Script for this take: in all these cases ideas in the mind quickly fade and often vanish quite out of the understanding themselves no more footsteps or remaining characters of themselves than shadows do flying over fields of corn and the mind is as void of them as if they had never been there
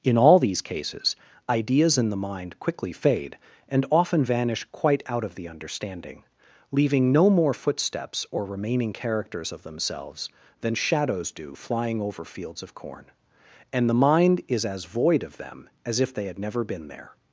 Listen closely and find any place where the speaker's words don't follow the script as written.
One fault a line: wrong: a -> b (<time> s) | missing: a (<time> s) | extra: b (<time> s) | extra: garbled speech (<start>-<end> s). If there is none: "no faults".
wrong: themselves -> leaving (6.7 s)